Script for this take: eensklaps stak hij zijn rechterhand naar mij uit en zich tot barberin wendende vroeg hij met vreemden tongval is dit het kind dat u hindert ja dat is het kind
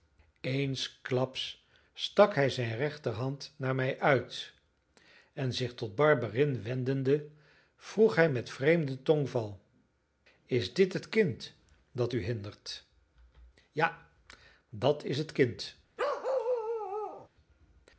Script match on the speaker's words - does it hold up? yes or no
yes